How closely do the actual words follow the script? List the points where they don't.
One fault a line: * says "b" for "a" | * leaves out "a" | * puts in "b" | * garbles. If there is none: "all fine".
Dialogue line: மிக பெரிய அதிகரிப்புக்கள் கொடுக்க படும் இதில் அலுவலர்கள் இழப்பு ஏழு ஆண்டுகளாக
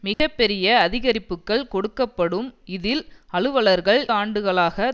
* leaves out "இழப்பு ஏழு"